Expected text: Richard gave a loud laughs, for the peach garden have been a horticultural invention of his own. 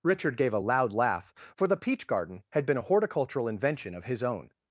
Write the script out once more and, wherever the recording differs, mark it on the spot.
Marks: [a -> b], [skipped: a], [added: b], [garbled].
Richard gave a loud [laughs, -> laugh] for the peach garden [have -> had] been a horticultural invention of his own.